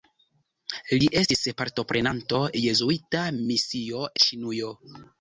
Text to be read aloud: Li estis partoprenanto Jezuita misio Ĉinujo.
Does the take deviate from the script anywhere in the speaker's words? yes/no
no